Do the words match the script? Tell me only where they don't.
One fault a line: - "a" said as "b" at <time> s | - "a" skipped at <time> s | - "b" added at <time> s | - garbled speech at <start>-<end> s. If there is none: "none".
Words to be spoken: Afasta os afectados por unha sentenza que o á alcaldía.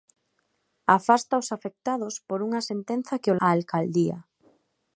none